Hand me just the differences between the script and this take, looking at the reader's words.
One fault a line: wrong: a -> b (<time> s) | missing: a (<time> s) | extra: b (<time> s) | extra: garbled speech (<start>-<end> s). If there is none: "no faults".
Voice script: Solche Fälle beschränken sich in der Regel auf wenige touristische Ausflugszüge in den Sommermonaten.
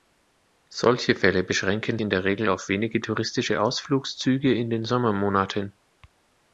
missing: sich (2.0 s)